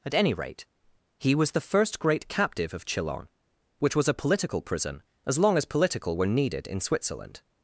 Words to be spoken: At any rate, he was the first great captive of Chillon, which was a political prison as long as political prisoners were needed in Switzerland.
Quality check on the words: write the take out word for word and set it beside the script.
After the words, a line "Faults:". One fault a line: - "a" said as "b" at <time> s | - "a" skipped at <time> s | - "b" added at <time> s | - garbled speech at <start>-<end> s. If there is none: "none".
At any rate, he was the first great captive of Chillon, which was a political prison as long as political were needed in Switzerland.
Faults:
- "prisoners" skipped at 6.2 s